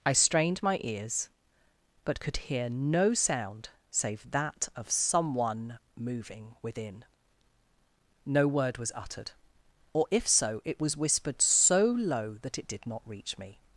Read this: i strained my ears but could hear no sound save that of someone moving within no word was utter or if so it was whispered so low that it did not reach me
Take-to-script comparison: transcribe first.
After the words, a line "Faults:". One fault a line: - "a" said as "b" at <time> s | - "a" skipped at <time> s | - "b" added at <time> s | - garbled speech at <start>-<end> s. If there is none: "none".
i strained my ears but could hear no sound save that of someone moving within no word was uttered or if so it was whispered so low that it did not reach me
Faults:
- "utter" said as "uttered" at 8.9 s